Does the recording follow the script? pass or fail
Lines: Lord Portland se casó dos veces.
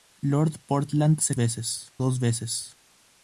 fail